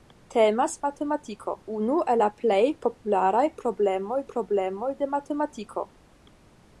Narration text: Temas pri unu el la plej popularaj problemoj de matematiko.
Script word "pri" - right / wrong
wrong